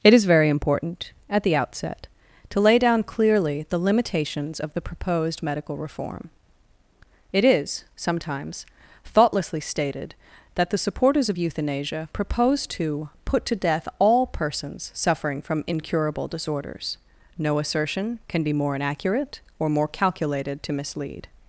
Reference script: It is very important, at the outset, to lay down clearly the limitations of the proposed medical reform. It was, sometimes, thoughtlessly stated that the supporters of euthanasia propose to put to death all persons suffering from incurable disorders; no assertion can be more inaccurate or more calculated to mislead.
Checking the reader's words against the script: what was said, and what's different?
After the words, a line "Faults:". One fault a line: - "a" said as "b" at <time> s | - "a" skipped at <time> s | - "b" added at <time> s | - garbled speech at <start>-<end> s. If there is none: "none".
It is very important, at the outset, to lay down clearly the limitations of the proposed medical reform. It is, sometimes, thoughtlessly stated that the supporters of euthanasia propose to put to death all persons suffering from incurable disorders; no assertion can be more inaccurate or more calculated to mislead.
Faults:
- "was" said as "is" at 7.5 s